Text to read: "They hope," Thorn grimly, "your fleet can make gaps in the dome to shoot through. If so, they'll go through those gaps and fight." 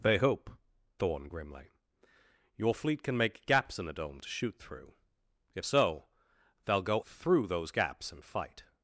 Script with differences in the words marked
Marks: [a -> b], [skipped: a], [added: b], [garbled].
"They hope," Thorn grimly, "your fleet can make gaps in the dome to shoot through. If so, they'll go through those gaps and fight."